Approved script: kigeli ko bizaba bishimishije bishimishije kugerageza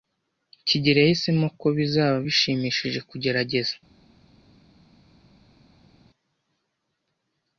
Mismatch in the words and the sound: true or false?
true